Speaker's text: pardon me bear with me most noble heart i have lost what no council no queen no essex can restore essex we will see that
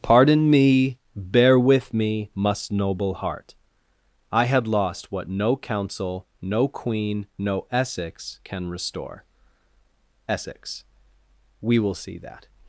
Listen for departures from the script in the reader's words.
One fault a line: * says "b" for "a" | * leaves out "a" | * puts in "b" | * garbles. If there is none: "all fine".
* says "must" for "most"
* says "had" for "have"